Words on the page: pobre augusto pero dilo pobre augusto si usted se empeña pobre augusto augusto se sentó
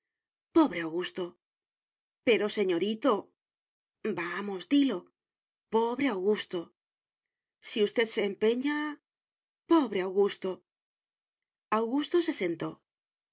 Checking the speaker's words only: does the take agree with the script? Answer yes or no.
no